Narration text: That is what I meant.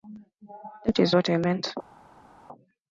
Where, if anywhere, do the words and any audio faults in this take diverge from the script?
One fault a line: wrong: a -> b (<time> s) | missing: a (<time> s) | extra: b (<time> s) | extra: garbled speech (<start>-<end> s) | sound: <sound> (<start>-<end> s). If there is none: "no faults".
no faults